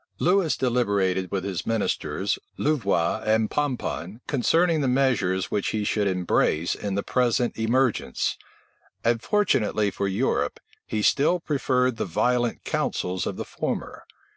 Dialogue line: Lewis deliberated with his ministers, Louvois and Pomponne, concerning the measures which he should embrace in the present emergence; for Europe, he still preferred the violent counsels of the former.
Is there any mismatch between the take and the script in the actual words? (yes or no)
yes